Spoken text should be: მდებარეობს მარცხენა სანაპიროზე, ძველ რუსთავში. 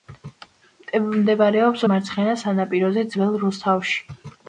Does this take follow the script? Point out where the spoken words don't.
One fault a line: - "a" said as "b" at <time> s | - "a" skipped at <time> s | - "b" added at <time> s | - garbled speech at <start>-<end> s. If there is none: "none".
none